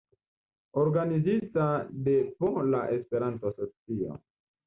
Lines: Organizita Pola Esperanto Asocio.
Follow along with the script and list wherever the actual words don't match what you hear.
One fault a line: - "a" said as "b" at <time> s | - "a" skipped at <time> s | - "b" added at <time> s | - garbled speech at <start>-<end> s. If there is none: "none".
- "de" added at 1.9 s